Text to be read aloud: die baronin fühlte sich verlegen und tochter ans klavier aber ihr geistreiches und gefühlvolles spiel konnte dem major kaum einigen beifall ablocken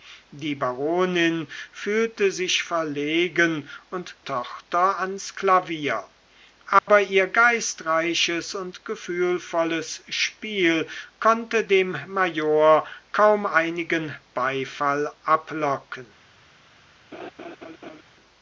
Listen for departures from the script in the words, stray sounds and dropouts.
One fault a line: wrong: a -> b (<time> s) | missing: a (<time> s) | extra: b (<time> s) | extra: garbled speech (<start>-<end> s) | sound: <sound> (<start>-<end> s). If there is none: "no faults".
sound: dropout (6.8-6.9 s)
sound: laugh (17.1-18.0 s)